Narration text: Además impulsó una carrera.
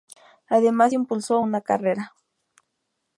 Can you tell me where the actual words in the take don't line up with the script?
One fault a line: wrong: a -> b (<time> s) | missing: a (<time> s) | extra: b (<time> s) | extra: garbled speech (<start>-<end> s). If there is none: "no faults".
no faults